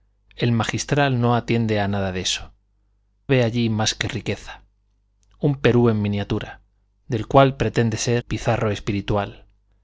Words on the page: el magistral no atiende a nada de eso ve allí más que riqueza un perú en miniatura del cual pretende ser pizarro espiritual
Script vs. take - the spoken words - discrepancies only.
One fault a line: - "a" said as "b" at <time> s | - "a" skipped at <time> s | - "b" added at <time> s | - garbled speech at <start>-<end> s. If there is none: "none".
none